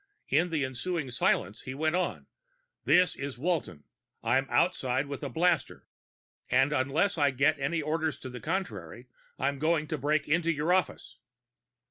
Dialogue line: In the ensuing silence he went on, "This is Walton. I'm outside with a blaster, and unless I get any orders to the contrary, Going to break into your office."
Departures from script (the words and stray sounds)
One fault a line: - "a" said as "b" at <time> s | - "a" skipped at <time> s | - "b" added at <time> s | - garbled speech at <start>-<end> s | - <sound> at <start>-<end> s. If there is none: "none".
- "I'm" added at 9.4 s